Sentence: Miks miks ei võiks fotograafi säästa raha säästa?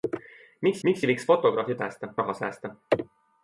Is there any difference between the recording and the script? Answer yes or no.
no